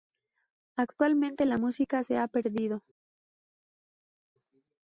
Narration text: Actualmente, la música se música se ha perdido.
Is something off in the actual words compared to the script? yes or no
yes